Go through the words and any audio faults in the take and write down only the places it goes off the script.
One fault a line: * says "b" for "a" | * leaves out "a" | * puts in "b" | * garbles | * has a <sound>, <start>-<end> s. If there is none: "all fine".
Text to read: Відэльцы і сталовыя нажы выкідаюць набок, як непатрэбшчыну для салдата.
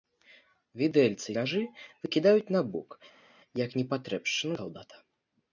* leaves out "сталовыя"
* leaves out "для"